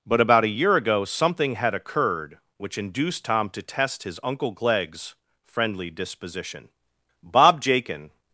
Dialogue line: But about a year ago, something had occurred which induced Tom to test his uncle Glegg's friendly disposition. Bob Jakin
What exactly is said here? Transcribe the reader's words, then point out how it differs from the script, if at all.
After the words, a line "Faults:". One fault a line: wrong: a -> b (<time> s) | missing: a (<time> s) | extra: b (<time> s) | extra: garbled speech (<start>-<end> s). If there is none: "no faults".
But about a year ago, something had occurred which induced Tom to test his uncle Glegg's friendly disposition. Bob Jakin
Faults:
no faults